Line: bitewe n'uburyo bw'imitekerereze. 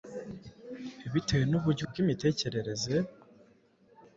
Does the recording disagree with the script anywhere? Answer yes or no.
no